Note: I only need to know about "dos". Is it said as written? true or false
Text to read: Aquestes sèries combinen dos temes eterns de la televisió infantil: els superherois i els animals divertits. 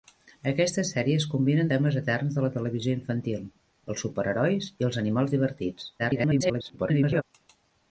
false